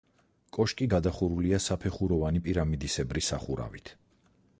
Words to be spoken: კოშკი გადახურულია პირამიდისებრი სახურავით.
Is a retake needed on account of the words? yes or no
yes